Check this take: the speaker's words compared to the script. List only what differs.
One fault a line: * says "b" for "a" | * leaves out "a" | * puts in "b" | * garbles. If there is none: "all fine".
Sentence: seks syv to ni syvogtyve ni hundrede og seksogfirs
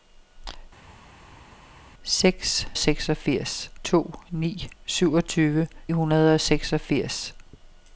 * says "seksogfirs" for "syv"
* leaves out "ni"